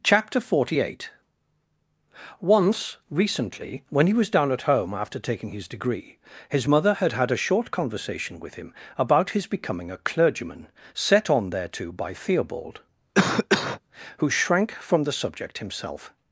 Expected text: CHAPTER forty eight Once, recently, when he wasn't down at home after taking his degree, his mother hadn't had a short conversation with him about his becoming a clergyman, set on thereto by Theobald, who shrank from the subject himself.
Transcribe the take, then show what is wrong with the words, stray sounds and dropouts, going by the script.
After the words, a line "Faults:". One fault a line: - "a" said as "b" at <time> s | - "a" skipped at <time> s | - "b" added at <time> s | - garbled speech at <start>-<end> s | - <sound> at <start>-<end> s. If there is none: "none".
CHAPTER forty eight Once, recently, when he was down at home after taking his degree, his mother had had a short conversation with him about his becoming a clergyman, set on thereto by Theobald, who shrank from the subject himself.
Faults:
- "wasn't" said as "was" at 4.1 s
- "hadn't" said as "had" at 6.9 s
- cough at 13.1-13.8 s